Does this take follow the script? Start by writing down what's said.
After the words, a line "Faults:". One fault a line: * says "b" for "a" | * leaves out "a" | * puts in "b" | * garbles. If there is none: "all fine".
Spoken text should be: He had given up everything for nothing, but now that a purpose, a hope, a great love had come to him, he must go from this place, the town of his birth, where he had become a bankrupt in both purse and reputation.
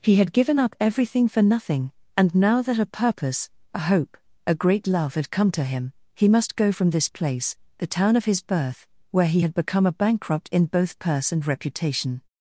He had given up everything for nothing, and now that a purpose, a hope, a great love had come to him, he must go from this place, the town of his birth, where he had become a bankrupt in both purse and reputation.
Faults:
* says "and" for "but"